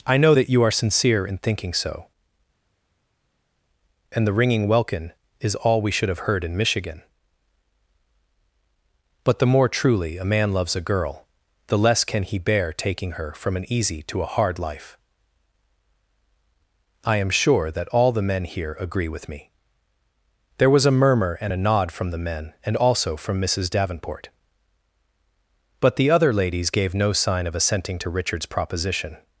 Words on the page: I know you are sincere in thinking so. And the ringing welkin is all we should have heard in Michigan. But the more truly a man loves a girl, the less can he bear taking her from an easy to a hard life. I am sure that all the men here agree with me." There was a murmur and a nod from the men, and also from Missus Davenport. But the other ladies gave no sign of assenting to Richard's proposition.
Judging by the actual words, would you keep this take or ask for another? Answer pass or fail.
fail